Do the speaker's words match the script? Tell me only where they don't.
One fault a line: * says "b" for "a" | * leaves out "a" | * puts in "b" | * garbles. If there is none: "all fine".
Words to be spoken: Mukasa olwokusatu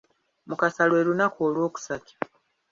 * puts in "lwe lunaku"